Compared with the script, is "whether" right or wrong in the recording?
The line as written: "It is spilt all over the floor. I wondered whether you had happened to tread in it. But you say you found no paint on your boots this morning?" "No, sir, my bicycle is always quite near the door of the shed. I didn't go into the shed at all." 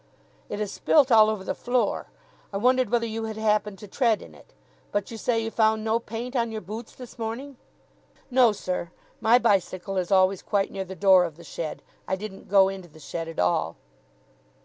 right